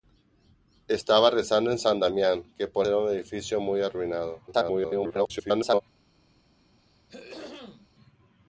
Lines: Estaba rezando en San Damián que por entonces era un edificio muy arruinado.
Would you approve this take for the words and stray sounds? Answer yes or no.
no